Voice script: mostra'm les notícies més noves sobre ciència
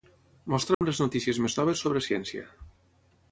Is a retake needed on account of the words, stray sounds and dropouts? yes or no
yes